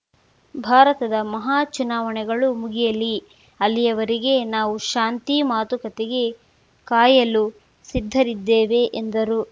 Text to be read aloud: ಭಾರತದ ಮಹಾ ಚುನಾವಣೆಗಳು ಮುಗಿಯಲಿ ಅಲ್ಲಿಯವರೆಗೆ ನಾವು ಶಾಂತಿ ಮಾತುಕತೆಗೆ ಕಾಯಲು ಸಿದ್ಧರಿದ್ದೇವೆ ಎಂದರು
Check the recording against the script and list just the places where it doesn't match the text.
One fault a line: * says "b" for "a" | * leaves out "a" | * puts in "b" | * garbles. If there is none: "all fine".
all fine